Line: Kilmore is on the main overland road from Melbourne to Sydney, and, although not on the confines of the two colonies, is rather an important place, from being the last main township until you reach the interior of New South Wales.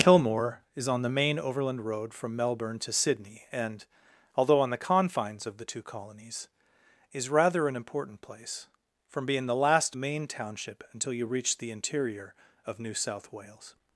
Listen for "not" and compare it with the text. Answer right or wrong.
wrong